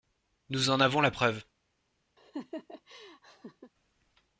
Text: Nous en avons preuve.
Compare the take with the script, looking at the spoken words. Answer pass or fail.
fail